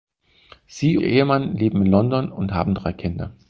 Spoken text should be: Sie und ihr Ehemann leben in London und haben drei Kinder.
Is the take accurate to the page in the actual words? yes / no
no